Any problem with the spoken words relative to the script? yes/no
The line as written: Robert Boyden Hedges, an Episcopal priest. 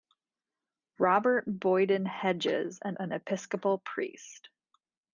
yes